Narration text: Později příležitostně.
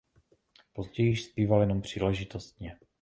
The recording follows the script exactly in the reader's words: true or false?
false